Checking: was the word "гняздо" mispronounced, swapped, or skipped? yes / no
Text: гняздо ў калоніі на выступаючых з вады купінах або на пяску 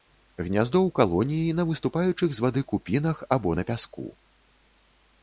no